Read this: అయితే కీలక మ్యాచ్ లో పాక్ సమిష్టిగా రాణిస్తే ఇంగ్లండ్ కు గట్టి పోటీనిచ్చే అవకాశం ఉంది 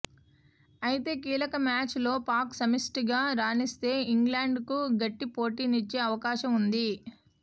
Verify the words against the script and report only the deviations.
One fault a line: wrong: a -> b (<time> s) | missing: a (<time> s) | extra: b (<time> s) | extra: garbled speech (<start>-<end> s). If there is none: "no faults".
no faults